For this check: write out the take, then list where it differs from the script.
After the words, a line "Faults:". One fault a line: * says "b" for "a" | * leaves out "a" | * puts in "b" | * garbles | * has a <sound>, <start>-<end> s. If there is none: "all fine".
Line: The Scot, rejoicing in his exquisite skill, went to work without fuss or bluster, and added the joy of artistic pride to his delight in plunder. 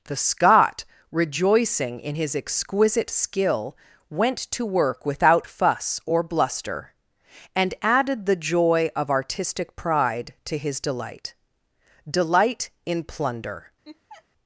The Scot, rejoicing in his exquisite skill, went to work without fuss or bluster, and added the joy of artistic pride to his delight delight in plunder.
Faults:
* puts in "delight"
* has a laugh, 13.8-14.2 s